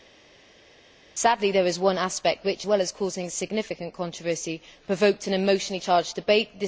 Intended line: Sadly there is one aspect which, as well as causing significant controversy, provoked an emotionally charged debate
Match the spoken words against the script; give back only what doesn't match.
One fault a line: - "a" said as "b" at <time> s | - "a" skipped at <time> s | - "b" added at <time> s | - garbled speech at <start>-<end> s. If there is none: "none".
- "as" skipped at 2.6 s